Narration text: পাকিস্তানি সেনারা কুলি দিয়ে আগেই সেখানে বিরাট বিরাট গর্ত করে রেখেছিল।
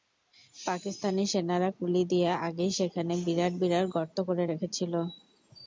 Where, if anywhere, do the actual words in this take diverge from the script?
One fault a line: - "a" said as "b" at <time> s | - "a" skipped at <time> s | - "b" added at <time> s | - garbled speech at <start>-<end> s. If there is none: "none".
none